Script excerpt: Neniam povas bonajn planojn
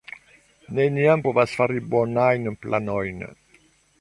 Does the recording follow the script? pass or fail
fail